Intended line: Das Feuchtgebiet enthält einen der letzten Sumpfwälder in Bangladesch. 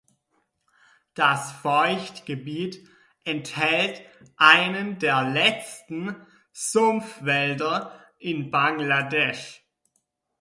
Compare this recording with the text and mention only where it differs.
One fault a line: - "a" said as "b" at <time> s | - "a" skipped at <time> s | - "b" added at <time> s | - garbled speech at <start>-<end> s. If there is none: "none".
none